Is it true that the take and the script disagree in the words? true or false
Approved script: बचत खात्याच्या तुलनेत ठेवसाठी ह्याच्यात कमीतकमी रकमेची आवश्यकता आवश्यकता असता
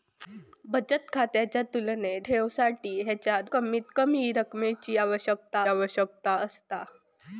false